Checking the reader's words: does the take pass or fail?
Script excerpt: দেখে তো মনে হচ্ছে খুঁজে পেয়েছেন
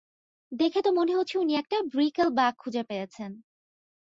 fail